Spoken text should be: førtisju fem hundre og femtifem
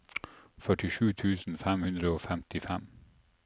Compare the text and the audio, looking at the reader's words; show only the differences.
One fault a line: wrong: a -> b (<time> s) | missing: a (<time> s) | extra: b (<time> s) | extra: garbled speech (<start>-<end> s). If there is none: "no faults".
extra: tusen (1.2 s)